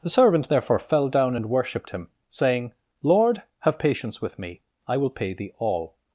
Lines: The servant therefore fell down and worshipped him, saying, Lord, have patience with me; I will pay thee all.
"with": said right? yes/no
yes